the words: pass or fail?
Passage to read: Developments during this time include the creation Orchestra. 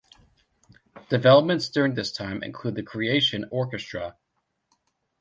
pass